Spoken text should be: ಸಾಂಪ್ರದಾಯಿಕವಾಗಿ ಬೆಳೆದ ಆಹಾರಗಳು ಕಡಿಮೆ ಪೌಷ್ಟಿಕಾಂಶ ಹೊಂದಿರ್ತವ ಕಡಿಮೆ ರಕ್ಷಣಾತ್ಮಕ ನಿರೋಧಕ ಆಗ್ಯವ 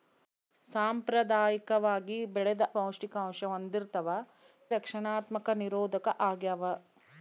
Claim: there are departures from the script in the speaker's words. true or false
true